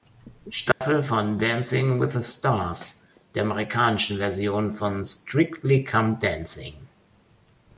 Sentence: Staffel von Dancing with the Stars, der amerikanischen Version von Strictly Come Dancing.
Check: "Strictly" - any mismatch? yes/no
no